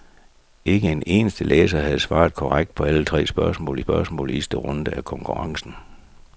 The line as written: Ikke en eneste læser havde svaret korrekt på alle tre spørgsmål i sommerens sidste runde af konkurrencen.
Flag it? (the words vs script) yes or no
yes